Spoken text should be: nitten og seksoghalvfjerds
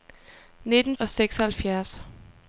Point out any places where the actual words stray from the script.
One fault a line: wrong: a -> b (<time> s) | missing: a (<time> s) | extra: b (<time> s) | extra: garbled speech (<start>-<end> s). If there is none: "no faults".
no faults